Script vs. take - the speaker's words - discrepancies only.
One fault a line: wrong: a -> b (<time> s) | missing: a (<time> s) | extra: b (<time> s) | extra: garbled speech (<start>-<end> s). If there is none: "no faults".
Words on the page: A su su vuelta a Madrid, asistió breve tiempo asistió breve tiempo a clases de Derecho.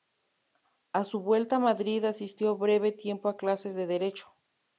missing: su (1.2 s)
missing: asistió breve tiempo (3.3 s)